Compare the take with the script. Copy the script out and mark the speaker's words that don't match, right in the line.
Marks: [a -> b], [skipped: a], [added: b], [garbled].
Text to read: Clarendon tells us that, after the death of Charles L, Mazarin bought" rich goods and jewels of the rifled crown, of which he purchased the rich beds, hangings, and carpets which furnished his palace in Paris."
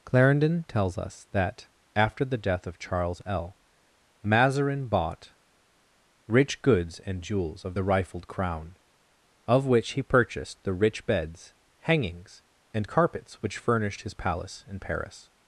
Clarendon tells us that, after the death of Charles L, Mazarin bought" rich goods and jewels of the rifled crown, of which he purchased the rich beds, hangings, and carpets which furnished his palace in Paris."